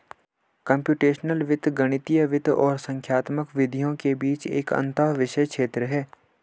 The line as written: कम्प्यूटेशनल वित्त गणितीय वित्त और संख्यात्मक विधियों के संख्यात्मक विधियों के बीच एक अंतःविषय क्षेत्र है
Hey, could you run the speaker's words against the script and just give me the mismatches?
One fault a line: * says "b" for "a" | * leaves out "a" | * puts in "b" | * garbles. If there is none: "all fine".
* leaves out "संख्यात्मक विधियों के"